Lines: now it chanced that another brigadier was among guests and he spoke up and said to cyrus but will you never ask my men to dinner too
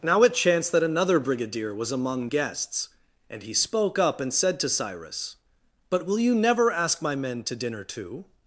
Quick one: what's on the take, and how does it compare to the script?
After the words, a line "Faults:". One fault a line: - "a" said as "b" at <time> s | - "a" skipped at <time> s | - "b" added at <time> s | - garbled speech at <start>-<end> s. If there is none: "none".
now it chanced that another brigadier was among guests and he spoke up and said to cyrus but will you never ask my men to dinner too
Faults:
none